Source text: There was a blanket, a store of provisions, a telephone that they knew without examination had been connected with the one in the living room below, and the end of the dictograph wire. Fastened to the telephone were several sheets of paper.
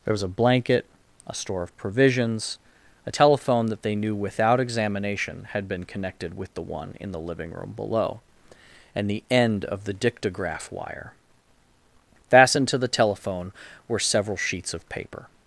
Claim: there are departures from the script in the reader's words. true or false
false